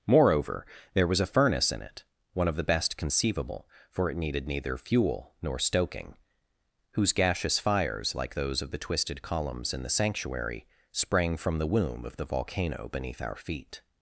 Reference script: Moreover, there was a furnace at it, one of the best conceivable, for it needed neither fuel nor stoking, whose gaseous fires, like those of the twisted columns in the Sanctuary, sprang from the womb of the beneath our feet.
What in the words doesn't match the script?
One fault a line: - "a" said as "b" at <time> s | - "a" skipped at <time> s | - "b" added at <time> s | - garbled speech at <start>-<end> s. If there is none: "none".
- "at" said as "in" at 1.7 s
- "volcano" added at 12.3 s